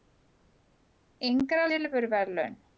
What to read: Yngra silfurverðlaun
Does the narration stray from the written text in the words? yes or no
no